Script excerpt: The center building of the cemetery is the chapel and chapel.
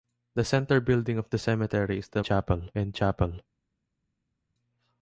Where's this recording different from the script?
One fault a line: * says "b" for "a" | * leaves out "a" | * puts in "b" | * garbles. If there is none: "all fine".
all fine